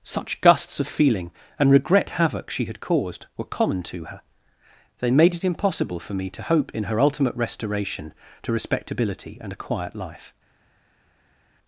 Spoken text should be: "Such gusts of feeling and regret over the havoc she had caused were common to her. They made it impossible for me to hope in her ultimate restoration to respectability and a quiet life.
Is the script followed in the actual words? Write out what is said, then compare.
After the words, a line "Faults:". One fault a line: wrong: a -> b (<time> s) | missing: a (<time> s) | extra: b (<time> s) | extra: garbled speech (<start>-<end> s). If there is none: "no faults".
"Such gusts of feeling and regret havoc she had caused were common to her. They made it impossible for me to hope in her ultimate restoration to respectability and a quiet life.
Faults:
missing: over the (2.2 s)